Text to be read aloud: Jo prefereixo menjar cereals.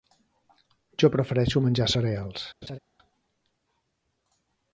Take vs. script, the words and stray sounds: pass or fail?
fail